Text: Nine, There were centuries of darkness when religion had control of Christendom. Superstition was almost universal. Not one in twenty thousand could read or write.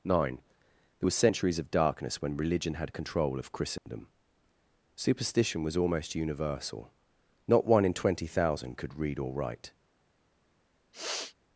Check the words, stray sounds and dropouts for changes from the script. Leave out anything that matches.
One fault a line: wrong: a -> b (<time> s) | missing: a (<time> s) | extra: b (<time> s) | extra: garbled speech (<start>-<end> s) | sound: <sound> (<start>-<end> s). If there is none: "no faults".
sound: dropout (3.8-3.9 s)
sound: sniff (10.9-11.4 s)